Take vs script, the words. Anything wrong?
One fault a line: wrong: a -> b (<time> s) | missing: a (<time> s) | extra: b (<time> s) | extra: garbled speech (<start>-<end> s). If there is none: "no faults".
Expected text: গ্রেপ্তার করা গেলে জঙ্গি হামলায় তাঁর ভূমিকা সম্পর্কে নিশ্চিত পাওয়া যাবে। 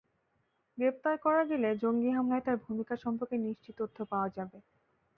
extra: তথ্য (3.8 s)